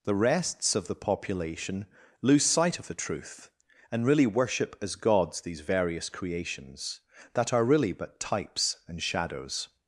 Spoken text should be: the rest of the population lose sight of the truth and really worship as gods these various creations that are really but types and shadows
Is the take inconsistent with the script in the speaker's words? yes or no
yes